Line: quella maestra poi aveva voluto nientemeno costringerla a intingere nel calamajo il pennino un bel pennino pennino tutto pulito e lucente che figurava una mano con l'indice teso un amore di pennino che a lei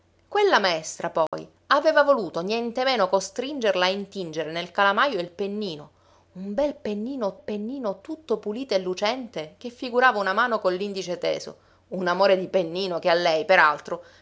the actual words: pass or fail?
pass